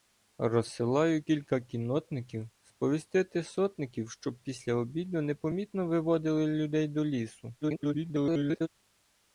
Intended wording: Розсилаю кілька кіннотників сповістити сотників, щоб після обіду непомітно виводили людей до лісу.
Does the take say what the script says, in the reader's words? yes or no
no